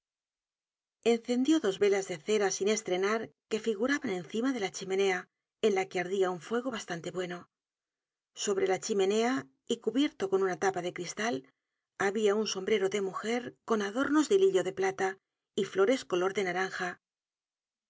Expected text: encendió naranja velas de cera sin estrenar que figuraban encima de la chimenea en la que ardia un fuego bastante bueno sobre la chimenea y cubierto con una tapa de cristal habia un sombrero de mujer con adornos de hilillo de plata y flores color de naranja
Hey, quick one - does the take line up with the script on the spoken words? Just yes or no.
no